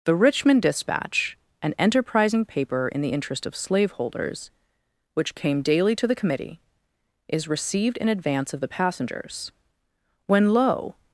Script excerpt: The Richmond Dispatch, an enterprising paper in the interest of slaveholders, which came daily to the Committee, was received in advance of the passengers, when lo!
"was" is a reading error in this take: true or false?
true